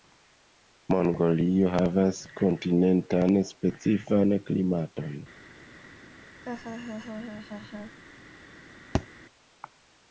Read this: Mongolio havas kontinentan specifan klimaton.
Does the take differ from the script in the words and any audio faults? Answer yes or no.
yes